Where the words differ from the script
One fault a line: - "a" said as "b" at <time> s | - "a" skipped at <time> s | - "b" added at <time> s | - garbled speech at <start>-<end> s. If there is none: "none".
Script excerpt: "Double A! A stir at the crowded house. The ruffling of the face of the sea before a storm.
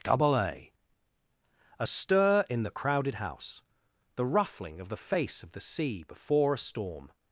- "at" said as "in" at 2.5 s